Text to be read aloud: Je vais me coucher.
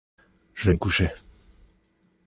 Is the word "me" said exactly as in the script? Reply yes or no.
yes